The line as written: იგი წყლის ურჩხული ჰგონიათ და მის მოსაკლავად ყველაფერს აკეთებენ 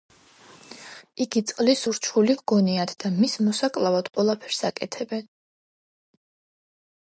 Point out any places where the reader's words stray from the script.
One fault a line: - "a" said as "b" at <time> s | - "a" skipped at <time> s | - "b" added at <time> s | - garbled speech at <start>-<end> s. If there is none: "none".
none